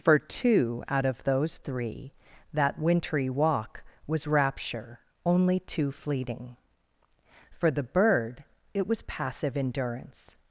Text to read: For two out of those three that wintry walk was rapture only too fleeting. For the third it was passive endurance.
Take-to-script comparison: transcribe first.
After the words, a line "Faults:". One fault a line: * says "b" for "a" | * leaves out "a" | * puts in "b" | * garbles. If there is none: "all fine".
For two out of those three that wintry walk was rapture only too fleeting. For the bird it was passive endurance.
Faults:
* says "bird" for "third"